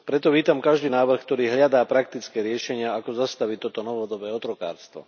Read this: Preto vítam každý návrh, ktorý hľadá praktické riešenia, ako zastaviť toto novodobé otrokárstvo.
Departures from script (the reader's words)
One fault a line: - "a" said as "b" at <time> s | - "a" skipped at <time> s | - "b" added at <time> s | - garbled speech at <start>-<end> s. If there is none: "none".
none